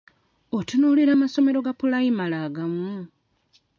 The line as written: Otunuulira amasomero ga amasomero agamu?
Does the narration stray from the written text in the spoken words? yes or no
yes